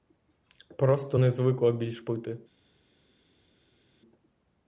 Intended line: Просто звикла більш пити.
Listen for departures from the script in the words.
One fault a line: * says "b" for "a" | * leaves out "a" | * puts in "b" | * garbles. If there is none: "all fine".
* puts in "не"